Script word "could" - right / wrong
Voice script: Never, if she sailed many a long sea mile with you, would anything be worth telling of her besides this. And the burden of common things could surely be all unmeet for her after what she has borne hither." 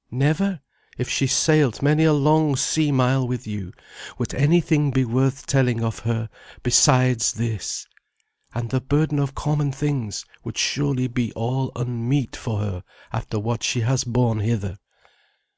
wrong